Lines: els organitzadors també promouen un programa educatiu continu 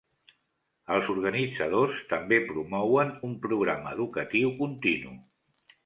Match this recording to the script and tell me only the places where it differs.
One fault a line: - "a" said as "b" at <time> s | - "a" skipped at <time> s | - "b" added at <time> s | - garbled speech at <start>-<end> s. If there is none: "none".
none